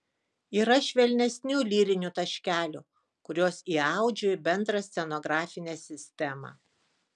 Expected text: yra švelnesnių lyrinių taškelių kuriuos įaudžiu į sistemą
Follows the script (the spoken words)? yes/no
no